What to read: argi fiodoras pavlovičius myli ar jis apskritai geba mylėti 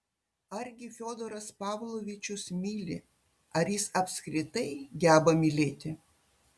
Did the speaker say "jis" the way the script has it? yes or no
yes